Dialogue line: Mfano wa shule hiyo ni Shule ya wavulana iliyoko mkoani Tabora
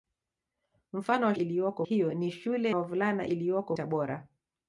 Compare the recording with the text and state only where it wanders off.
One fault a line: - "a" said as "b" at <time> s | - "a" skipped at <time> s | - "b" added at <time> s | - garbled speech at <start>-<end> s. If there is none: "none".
- "shule" said as "iliyoko" at 1.3 s
- "ya" skipped at 2.7 s
- "mkoani" skipped at 3.8 s